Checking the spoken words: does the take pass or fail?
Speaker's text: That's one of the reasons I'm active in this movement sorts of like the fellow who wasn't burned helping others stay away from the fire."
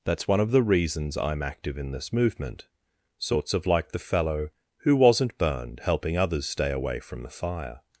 pass